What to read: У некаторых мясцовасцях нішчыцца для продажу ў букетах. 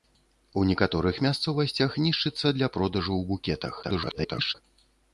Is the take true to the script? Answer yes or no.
no